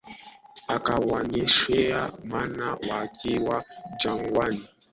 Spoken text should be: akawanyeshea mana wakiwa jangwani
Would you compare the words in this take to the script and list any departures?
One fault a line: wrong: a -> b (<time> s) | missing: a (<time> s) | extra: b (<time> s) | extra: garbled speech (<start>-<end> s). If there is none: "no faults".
no faults